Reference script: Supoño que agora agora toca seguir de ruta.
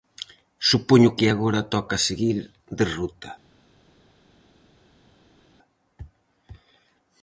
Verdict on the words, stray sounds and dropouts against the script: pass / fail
fail